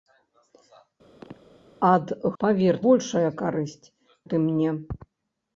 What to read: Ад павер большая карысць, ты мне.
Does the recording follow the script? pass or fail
pass